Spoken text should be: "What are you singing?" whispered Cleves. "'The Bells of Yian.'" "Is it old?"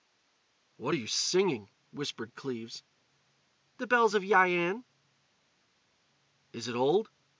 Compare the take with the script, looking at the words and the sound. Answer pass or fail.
pass